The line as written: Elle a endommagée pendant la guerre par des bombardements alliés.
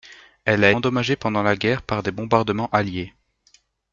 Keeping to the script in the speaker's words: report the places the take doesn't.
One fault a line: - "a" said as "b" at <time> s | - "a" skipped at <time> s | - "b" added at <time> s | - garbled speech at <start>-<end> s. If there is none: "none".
none